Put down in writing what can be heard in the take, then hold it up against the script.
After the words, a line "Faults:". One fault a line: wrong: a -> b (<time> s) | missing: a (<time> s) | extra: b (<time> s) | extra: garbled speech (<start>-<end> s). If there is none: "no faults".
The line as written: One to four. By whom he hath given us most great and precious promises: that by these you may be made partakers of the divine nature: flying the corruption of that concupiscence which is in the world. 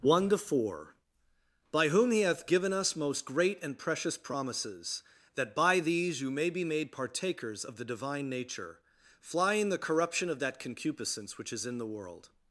One to four. By whom he hath given us most great and precious promises: that by these you may be made partakers of the divine nature: flying the corruption of that concupiscence which is in the world.
Faults:
no faults